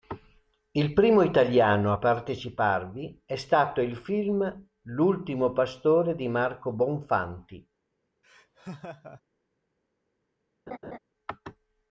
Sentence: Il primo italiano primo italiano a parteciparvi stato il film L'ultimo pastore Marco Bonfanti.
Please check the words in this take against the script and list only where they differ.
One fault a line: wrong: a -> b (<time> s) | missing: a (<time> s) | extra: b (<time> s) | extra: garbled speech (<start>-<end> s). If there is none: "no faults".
missing: primo italiano (1.9 s)
extra: è (3.2 s)
extra: di (6.1 s)